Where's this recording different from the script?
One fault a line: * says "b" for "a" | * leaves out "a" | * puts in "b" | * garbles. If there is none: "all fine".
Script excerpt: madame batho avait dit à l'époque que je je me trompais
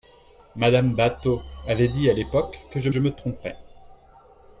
all fine